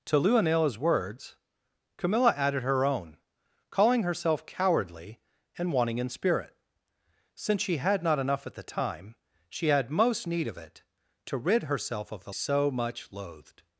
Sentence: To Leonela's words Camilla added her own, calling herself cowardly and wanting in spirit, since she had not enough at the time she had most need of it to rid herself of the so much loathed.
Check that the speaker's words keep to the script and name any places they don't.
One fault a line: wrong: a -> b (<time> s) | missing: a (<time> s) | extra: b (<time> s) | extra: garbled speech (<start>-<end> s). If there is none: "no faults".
no faults